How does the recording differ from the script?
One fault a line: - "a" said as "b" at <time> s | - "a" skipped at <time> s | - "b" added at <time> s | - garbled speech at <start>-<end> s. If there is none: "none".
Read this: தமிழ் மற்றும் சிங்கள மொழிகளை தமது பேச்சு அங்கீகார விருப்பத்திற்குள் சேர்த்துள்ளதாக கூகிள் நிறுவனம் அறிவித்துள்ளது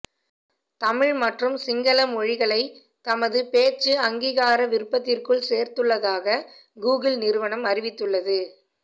none